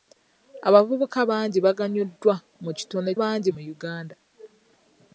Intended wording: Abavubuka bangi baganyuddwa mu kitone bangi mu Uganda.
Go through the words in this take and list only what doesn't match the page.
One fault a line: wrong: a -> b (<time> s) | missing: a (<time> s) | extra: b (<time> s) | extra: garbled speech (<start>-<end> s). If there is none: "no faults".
no faults